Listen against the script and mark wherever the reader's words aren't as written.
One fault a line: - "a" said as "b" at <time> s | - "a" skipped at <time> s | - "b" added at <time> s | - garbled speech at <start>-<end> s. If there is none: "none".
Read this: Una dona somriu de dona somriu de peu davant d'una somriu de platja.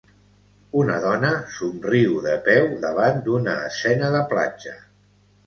- "dona somriu de" skipped at 2.3 s
- "somriu" said as "escena" at 3.7 s